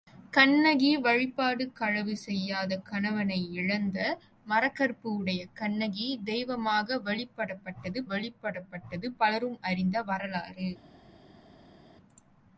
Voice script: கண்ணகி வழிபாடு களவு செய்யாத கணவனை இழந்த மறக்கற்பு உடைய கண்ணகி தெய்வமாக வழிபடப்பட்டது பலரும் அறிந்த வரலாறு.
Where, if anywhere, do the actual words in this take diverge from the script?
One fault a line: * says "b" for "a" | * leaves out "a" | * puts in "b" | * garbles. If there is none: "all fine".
* puts in "வழிபடப்பட்டது"